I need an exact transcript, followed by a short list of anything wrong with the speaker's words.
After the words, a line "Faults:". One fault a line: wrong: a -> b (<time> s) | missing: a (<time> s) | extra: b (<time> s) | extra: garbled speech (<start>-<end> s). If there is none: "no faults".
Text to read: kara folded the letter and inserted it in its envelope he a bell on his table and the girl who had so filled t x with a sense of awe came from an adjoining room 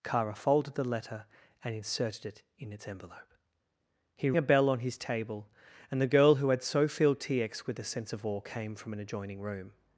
kara folded the letter and inserted it in its envelope he a bell on his table and the girl who had so filled t x with a sense of awe came from an adjoining room
Faults:
no faults